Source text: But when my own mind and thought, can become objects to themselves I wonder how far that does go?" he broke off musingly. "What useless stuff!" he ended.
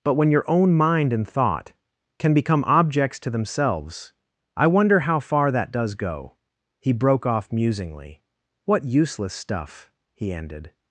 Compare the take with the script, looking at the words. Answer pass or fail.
fail